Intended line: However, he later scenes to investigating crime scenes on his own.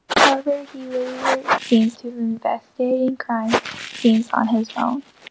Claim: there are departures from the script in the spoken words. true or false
false